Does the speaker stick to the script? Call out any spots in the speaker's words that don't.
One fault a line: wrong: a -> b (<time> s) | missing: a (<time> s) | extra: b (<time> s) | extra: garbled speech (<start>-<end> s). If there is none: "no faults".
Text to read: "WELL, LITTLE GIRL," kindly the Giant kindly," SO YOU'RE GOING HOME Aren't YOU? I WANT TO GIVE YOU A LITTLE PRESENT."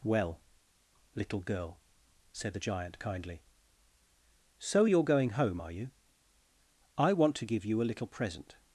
wrong: kindly -> said (2.3 s)
wrong: Aren't -> ARE (5.6 s)